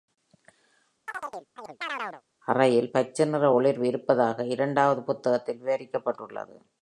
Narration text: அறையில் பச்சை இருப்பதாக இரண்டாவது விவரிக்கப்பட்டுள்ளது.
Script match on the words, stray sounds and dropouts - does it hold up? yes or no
no